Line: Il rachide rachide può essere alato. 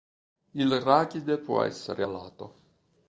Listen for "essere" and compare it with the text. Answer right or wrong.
right